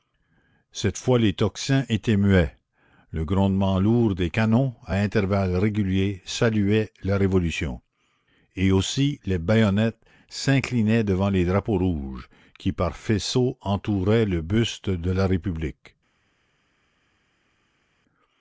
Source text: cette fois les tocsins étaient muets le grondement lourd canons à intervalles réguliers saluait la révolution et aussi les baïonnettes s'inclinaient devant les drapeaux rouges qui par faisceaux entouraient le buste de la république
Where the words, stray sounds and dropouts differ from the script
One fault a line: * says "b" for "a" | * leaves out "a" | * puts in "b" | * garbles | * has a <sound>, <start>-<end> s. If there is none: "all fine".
* puts in "des"